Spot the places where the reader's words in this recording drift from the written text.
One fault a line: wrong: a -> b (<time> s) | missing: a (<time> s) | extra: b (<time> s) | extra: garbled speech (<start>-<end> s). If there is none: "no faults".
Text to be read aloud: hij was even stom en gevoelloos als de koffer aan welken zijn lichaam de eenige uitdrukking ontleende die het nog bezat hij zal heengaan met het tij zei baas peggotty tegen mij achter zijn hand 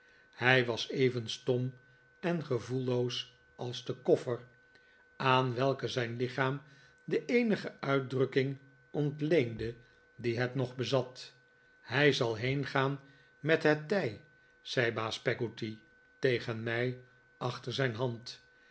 no faults